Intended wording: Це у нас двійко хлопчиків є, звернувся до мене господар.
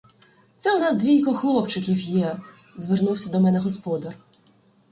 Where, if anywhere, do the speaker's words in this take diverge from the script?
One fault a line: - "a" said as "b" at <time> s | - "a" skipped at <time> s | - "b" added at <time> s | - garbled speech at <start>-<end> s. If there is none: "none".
none